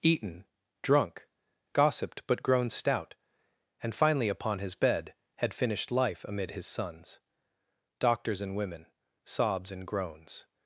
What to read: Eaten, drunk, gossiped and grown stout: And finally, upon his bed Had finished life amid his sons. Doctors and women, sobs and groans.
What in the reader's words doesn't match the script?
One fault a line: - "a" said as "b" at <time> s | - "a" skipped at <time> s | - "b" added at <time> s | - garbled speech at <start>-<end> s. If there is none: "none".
- "and" said as "but" at 2.3 s